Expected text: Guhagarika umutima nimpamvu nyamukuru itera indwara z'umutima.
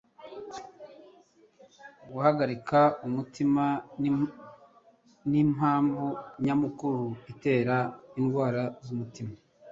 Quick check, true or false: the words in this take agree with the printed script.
true